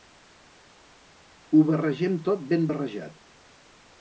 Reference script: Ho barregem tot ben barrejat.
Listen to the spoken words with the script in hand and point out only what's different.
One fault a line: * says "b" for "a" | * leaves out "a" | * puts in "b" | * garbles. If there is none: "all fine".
all fine